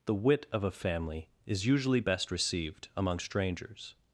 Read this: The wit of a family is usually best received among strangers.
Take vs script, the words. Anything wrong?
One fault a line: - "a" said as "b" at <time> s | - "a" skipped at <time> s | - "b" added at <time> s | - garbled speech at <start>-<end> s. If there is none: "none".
none